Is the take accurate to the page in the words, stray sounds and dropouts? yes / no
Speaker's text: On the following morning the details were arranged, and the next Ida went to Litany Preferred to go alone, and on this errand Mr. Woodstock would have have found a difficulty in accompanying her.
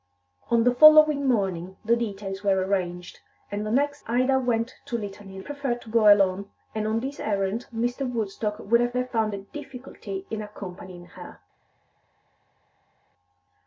yes